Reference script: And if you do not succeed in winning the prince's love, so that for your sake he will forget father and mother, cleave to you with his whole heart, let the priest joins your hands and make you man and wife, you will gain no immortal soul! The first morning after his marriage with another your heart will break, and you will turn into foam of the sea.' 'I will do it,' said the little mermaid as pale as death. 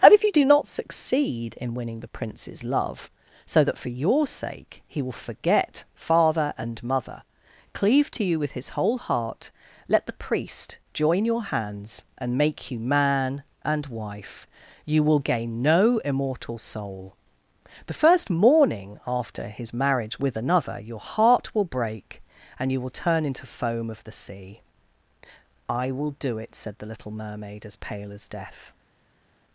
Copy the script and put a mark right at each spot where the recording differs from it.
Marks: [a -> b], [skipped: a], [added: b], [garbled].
And if you do not succeed in winning the prince's love, so that for your sake he will forget father and mother, cleave to you with his whole heart, let the priest [joins -> join] your hands and make you man and wife, you will gain no immortal soul! The first morning after his marriage with another your heart will break, and you will turn into foam of the sea.' 'I will do it,' said the little mermaid as pale as death.